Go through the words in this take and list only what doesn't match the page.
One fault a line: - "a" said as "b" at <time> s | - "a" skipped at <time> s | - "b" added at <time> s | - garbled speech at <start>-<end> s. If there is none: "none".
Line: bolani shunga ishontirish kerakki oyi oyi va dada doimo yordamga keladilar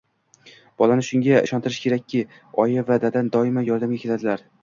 - "oyi" skipped at 2.8 s